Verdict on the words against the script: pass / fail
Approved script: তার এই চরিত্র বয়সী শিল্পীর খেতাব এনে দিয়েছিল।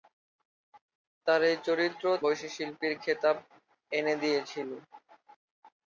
pass